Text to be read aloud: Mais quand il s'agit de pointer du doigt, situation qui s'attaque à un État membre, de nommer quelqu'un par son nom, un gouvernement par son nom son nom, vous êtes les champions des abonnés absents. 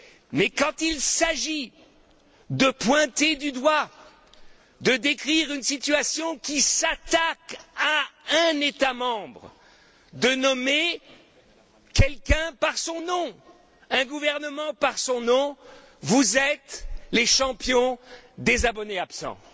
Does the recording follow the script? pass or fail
fail